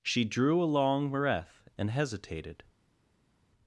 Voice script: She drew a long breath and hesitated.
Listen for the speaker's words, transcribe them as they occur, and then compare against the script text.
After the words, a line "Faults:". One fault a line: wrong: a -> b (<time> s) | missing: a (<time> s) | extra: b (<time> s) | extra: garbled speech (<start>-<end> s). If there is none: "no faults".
She drew a long breath and hesitated.
Faults:
no faults